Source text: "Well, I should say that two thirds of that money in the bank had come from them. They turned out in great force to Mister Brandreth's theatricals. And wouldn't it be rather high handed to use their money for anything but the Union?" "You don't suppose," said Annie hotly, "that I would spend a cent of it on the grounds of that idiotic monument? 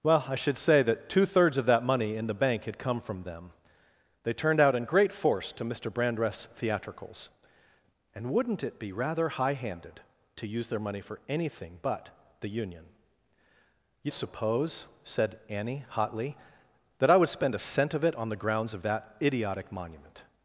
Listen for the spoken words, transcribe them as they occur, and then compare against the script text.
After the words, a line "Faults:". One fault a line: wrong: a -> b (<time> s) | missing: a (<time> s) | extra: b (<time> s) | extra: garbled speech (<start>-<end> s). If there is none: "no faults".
"Well, I should say that two thirds of that money in the bank had come from them. They turned out in great force to Mister Brandreth's theatricals. And wouldn't it be rather high handed to use their money for anything but the Union?" "You suppose," said Annie hotly, "that I would spend a cent of it on the grounds of that idiotic monument?
Faults:
missing: don't (14.1 s)